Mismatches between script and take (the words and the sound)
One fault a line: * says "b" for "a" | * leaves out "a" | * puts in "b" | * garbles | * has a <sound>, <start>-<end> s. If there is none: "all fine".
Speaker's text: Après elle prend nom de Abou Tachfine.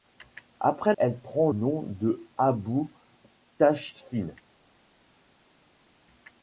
all fine